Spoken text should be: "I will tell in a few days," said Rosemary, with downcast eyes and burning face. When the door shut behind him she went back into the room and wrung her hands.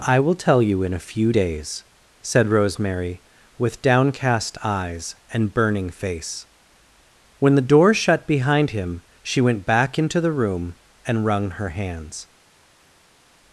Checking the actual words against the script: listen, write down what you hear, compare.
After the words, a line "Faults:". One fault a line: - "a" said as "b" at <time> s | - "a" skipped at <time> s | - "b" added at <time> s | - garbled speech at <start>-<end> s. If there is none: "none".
"I will tell you in a few days," said Rosemary, with downcast eyes and burning face. When the door shut behind him she went back into the room and wrung her hands.
Faults:
- "you" added at 0.6 s